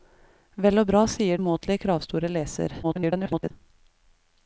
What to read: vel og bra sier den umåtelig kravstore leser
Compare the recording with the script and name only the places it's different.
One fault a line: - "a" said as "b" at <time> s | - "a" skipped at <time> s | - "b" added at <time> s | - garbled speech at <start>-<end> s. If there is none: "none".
- "den" skipped at 1.4 s
- garbled speech at 2.8-3.5 s